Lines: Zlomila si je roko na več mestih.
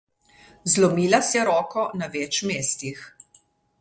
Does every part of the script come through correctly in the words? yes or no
yes